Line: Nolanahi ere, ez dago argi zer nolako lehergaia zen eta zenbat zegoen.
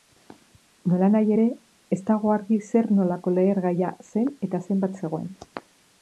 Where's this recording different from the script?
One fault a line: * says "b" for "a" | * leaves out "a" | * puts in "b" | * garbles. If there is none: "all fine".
all fine